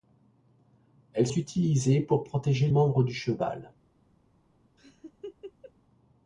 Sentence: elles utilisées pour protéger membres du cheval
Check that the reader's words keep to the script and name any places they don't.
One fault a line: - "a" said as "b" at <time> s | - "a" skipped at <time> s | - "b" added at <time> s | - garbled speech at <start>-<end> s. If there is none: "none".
none